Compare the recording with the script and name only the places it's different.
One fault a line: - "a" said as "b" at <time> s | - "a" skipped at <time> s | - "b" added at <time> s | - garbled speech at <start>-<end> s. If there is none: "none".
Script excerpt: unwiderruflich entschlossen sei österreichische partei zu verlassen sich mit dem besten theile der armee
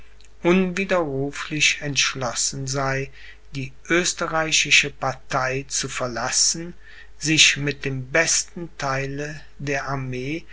- "die" added at 3.5 s